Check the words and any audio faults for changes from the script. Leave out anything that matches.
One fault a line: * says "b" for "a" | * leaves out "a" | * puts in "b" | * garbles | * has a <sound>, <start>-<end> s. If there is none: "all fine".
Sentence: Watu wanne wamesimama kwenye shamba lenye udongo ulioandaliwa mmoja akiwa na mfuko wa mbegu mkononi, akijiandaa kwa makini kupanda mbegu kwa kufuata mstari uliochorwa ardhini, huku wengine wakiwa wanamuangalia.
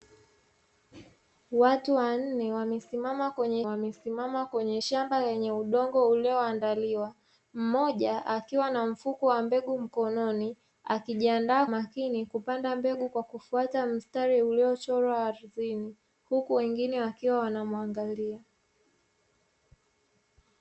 * puts in "wamesimama kwenye"
* leaves out "kwa"